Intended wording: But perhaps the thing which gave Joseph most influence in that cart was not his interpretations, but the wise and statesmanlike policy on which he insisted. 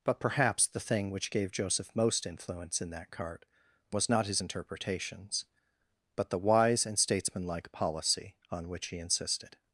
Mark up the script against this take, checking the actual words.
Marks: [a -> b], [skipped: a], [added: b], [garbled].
But perhaps the thing which gave Joseph most influence in that cart was not his interpretations, but the wise and statesmanlike policy on which he insisted.